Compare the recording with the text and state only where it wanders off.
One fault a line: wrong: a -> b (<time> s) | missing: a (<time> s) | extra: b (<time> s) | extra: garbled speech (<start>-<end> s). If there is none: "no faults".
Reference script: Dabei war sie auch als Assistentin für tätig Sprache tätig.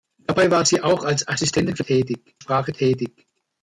no faults